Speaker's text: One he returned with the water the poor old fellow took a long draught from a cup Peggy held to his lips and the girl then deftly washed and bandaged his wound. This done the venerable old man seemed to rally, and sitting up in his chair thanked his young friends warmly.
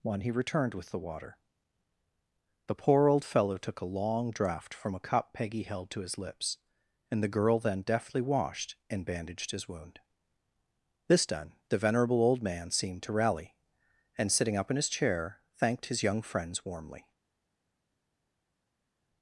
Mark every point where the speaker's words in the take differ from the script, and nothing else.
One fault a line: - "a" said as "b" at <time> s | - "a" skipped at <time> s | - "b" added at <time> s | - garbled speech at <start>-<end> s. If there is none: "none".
none